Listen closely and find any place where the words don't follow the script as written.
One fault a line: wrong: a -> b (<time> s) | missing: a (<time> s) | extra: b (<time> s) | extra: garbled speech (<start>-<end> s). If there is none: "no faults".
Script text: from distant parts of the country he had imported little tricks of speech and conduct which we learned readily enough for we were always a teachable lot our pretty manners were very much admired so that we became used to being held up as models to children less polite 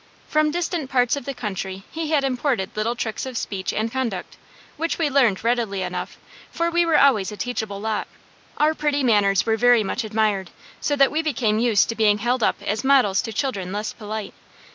no faults